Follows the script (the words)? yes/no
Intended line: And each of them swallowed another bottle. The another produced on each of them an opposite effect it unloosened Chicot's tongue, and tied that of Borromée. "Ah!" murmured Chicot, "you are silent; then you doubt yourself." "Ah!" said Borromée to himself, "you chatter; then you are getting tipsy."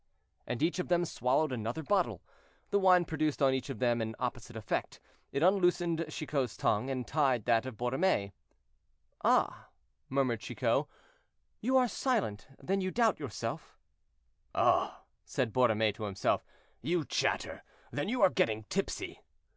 no